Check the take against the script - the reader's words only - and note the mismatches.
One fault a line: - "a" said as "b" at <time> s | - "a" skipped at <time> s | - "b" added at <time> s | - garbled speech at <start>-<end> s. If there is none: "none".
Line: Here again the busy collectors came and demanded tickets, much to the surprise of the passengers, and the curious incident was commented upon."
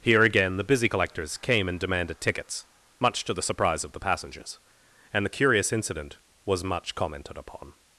- "much" added at 6.6 s